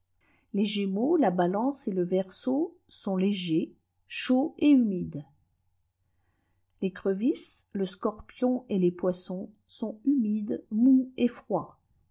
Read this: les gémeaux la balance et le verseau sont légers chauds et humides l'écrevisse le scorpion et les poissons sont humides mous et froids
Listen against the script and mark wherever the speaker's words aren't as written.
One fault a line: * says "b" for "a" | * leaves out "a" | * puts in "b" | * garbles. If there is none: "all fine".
all fine